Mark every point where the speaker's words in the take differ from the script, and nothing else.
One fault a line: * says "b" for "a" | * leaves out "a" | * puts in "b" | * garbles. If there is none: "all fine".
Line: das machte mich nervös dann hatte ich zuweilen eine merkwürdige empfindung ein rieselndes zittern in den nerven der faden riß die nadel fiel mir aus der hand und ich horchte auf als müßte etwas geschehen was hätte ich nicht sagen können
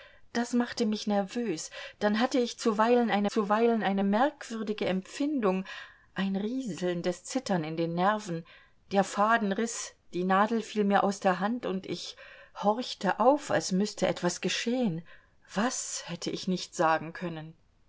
* puts in "zuweilen eine"